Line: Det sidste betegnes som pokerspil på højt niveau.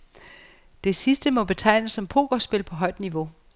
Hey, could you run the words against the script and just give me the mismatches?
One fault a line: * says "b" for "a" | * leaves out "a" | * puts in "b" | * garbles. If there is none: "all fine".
* puts in "må"